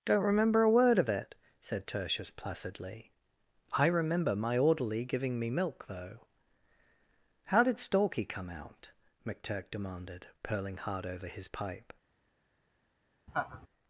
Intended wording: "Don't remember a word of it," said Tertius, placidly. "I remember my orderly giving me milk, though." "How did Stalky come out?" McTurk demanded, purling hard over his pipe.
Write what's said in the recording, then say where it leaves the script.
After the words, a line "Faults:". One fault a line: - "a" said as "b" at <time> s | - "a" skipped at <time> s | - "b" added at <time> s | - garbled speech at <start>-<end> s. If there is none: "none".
"Don't remember a word of it," said Tertius, placidly. "I remember my orderly giving me milk, though." "How did Stalky come out?" McTurk demanded, purling hard over his pipe.
Faults:
none